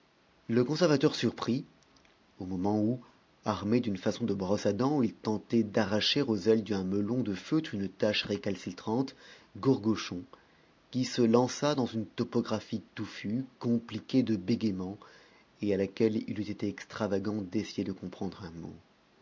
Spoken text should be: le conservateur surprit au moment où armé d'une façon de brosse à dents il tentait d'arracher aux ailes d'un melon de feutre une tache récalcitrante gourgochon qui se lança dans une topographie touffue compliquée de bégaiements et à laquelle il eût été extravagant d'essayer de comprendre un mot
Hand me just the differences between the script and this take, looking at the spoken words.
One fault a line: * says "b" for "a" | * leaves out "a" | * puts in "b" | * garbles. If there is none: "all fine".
all fine